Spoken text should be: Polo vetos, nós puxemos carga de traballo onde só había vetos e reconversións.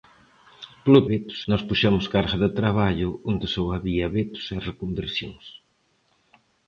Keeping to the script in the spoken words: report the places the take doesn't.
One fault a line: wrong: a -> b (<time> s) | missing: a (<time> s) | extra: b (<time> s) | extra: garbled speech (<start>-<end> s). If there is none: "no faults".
no faults